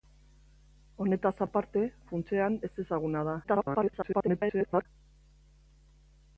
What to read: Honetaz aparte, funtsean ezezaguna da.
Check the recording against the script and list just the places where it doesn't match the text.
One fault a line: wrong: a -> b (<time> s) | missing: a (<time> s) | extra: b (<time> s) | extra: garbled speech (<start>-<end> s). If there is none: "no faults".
extra: garbled speech (3.4-4.9 s)